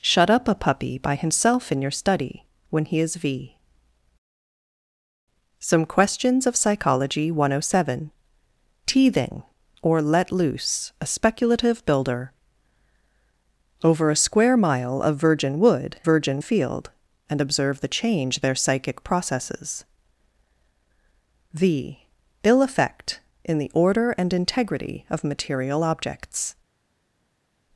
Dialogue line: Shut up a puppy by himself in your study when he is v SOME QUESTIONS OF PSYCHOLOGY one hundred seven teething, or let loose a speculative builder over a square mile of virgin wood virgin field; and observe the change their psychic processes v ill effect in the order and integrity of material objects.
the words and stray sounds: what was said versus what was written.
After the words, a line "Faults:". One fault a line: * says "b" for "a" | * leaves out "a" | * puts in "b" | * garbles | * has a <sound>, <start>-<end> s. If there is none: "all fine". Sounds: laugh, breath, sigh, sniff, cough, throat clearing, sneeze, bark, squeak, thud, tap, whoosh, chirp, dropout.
Shut up a puppy by himself in your study when he is v SOME QUESTIONS OF PSYCHOLOGY one hundred seven teething, or let loose a speculative builder over a square mile of virgin wood virgin field; and observe the change their psychic processes v ill effect in the order and integrity of material objects.
Faults:
all fine